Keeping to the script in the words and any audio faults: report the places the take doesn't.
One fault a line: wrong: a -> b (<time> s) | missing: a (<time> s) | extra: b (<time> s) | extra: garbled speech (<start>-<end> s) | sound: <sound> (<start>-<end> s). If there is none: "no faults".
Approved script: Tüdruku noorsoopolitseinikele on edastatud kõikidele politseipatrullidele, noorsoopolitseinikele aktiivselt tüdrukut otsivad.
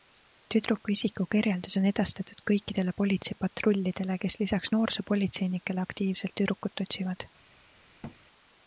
wrong: noorsoopolitseinikele -> isikukirjeldus (0.9 s)
extra: kes lisaks (4.2 s)
sound: thud (8.0-8.2 s)